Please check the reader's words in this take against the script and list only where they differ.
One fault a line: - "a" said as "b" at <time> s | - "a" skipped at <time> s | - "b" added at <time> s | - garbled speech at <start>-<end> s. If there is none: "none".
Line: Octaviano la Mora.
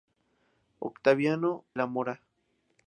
none